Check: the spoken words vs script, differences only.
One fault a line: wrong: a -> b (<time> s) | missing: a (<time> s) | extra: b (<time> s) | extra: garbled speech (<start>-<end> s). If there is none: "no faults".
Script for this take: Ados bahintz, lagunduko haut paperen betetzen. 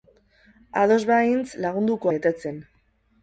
missing: haut paperen (2.1 s)